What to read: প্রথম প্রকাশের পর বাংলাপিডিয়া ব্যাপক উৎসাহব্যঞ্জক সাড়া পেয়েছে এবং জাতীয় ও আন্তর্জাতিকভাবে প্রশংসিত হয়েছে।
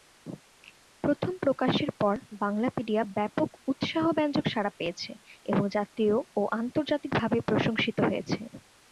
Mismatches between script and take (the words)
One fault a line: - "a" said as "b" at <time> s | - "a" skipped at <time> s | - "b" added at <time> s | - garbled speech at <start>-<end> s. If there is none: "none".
none